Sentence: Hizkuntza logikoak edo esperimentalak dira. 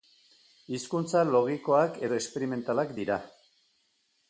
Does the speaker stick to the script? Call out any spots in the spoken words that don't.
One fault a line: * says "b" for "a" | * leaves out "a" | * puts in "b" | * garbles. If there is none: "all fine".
all fine